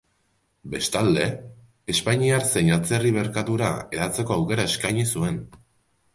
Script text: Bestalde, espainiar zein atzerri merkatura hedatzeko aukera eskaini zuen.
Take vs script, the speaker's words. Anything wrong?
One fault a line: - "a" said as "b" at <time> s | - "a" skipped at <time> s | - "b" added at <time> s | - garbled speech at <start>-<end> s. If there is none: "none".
none